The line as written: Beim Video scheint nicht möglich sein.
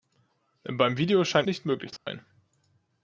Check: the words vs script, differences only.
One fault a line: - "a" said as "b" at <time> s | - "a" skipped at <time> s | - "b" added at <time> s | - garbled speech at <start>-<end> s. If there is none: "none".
none